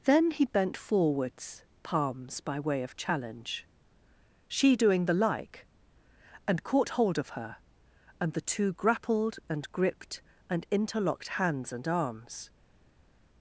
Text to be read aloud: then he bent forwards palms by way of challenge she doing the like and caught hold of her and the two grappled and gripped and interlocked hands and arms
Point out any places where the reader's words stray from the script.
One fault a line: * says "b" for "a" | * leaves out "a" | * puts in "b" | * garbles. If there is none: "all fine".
all fine